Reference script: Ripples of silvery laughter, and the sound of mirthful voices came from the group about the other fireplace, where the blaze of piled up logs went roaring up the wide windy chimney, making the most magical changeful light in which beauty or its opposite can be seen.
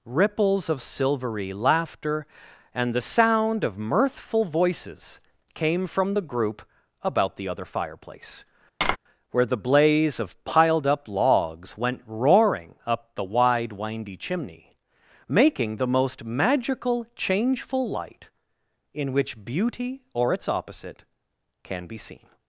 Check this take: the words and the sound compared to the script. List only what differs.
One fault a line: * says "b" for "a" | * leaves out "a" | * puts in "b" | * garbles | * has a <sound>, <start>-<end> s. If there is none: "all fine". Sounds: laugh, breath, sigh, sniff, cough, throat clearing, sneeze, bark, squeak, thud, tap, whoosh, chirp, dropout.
* has a tap, 8.8-9.0 s